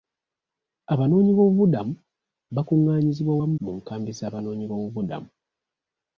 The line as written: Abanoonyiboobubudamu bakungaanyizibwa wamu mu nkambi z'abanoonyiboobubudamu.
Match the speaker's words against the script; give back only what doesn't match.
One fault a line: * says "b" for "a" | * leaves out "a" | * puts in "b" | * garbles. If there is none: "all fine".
all fine